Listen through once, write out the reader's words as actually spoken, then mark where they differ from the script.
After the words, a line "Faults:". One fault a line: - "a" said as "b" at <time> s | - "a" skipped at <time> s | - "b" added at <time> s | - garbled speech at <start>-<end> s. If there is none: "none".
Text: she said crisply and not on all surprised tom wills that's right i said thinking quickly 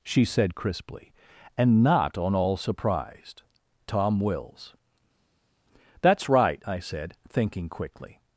she said crisply and not on all surprised tom wills that's right i said thinking quickly
Faults:
none